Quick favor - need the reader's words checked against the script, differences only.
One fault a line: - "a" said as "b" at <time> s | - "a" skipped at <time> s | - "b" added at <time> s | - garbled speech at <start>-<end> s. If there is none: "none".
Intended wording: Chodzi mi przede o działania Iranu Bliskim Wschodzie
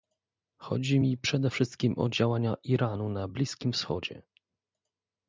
- "wszystkim" added at 1.5 s
- "na" added at 3.1 s